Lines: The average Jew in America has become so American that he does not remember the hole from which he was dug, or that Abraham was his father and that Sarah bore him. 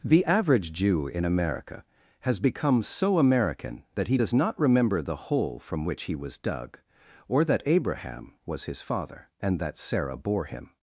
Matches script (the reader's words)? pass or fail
pass